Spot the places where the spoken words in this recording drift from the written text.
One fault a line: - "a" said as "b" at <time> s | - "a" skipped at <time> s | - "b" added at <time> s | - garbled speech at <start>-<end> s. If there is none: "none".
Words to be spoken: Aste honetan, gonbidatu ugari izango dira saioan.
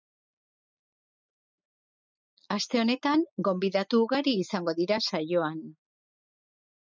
none